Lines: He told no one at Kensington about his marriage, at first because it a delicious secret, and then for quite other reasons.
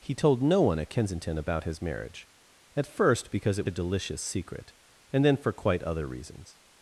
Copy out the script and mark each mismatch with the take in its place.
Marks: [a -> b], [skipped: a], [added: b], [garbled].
He told no one at Kensington about his marriage, at first because it a delicious secret, and then for quite other reasons.